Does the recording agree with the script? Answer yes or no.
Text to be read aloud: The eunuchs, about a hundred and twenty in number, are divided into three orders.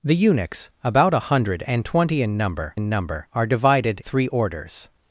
no